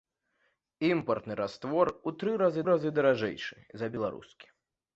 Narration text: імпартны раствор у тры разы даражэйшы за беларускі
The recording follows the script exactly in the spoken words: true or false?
false